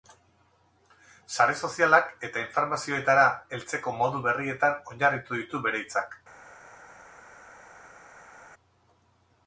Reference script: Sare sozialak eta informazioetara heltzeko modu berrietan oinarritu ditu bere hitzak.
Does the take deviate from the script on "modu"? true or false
false